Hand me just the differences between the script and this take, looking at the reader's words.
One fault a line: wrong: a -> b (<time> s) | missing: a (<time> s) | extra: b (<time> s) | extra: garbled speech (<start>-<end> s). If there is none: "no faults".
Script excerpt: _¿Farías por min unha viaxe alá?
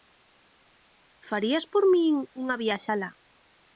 no faults